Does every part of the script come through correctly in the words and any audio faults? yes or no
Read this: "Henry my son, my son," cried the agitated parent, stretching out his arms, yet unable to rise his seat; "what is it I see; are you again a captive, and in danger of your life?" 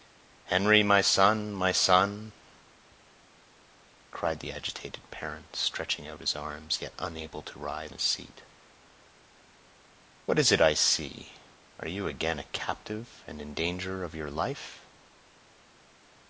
yes